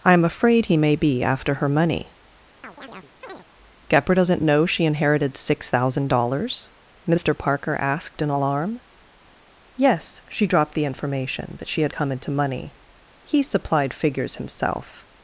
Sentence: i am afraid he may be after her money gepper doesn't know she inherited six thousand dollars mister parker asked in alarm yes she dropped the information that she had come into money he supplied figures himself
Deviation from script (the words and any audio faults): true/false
true